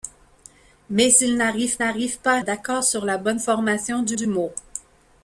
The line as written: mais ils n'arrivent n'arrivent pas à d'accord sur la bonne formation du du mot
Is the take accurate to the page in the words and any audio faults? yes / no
yes